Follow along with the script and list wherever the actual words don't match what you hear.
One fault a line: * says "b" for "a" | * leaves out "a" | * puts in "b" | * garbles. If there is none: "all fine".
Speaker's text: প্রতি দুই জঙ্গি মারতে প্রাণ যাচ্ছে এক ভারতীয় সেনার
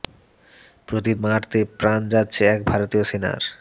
* leaves out "দুই জঙ্গি"